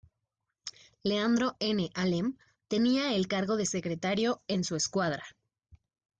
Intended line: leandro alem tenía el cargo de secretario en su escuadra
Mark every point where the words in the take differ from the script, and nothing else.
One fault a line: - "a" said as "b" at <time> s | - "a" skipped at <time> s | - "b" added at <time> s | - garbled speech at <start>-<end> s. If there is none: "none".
- "n" added at 1.6 s